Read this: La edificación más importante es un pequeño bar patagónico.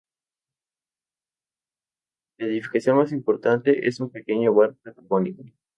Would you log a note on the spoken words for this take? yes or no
no